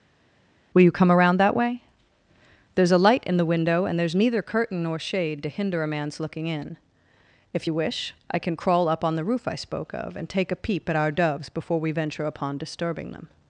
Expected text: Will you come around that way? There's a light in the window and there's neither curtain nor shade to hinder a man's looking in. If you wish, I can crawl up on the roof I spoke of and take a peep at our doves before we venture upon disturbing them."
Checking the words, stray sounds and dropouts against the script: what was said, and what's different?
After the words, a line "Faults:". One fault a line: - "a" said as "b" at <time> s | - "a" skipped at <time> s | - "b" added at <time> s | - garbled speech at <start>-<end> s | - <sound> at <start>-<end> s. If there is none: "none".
Will you come around that way? There's a light in the window and there's neither curtain nor shade to hinder a man's looking in. If you wish, I can crawl up on the roof I spoke of and take a peep at our doves before we venture upon disturbing them."
Faults:
none